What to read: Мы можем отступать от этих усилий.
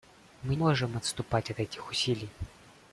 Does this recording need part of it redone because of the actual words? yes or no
no